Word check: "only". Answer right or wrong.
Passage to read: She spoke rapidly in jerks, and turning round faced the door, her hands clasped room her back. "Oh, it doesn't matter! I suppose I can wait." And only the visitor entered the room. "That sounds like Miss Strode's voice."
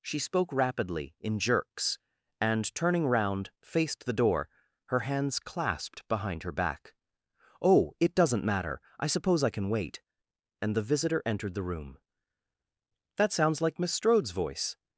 wrong